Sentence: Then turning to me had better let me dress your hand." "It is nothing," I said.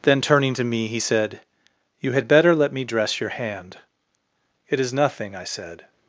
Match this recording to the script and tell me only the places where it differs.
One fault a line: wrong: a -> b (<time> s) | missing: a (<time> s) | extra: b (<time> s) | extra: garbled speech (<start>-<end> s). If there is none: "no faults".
extra: he said You (0.9 s)